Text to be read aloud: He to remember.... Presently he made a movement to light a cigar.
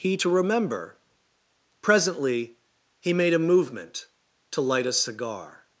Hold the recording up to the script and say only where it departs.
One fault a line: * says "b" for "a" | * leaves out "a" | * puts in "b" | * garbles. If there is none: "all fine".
all fine